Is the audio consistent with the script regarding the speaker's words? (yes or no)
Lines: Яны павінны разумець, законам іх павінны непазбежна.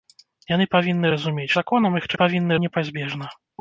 yes